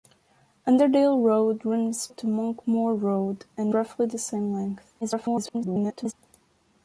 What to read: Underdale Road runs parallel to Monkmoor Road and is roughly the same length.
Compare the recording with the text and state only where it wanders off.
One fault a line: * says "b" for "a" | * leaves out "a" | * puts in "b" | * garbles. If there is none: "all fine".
* leaves out "parallel"
* leaves out "is"
* garbles